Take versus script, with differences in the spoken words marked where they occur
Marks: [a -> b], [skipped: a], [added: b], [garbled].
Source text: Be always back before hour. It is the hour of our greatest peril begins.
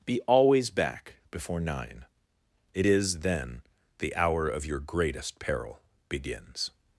Be always back before [hour. -> nine] It is [added: then] the hour of [our -> your] greatest peril begins.